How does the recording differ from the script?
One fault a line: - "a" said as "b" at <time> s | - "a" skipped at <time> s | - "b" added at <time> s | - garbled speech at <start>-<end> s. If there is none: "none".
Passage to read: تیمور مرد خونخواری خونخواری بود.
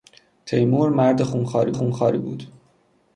none